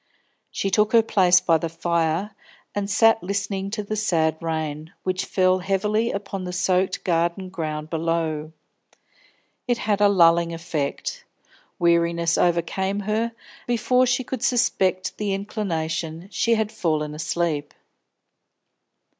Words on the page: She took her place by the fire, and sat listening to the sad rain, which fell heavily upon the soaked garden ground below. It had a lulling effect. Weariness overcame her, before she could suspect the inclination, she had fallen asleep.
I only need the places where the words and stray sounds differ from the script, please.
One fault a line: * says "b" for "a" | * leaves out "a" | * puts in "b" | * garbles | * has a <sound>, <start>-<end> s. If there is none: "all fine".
all fine